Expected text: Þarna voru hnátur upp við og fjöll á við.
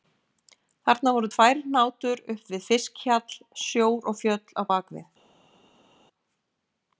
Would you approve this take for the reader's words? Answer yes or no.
no